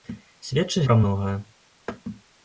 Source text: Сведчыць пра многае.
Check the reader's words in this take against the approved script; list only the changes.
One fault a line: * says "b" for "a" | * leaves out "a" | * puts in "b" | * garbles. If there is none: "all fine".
all fine